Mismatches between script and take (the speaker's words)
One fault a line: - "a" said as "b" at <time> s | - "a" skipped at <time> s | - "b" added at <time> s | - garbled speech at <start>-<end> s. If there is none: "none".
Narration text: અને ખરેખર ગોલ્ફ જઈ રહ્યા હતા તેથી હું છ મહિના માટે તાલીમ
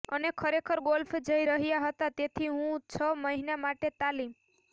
none